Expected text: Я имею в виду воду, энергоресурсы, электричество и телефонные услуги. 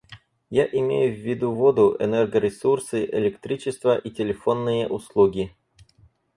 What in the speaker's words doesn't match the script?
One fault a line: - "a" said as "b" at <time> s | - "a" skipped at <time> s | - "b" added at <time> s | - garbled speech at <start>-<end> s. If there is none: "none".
none